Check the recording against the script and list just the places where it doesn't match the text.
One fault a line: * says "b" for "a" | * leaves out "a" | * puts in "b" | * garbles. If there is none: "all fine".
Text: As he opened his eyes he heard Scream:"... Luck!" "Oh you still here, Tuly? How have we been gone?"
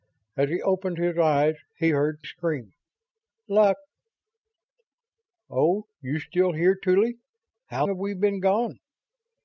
all fine